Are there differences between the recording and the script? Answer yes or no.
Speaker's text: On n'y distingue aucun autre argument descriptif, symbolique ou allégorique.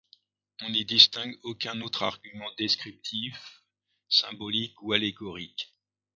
no